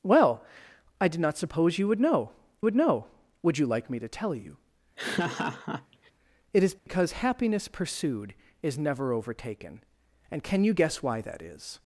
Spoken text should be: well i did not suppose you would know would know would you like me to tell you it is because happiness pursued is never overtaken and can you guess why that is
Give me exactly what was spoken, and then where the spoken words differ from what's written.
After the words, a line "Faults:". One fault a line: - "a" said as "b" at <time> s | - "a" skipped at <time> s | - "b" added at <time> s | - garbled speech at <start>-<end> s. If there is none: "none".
well i did not suppose you would know would know would you like me to tell you it is because happiness pursued is never overtaken and can you guess why that is
Faults:
none